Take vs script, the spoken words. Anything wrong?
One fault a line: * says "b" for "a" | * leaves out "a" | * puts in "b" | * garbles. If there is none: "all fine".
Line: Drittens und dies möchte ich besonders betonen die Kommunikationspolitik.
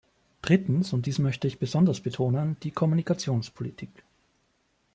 all fine